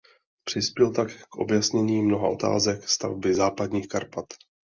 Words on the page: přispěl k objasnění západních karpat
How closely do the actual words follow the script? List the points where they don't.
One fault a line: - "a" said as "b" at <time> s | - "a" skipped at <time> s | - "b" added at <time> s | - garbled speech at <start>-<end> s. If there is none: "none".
- "tak" added at 0.9 s
- "mnoha otázek stavby" added at 2.0 s